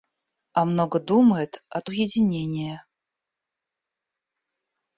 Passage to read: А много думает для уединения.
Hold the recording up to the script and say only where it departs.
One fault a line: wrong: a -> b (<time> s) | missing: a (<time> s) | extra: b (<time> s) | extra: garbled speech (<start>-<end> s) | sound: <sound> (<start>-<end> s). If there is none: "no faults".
wrong: для -> от (1.7 s)